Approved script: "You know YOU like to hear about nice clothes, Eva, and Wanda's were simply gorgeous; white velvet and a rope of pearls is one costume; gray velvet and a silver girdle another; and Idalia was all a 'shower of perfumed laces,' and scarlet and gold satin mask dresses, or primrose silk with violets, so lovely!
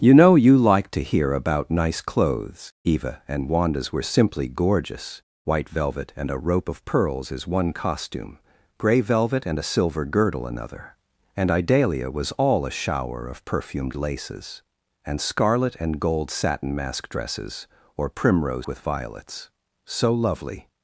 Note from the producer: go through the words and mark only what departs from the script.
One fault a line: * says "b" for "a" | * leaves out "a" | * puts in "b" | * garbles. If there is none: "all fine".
* leaves out "silk"